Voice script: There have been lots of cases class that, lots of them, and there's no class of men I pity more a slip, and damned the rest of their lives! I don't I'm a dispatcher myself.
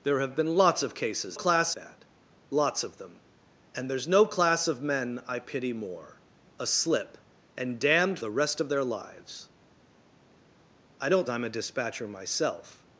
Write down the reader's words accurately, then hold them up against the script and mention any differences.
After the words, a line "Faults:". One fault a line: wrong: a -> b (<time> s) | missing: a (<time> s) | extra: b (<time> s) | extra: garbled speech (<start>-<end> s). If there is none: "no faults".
There have been lots of cases class that, lots of them, and there's no class of men I pity more a slip, and damned the rest of their lives! I don't I'm a dispatcher myself.
Faults:
no faults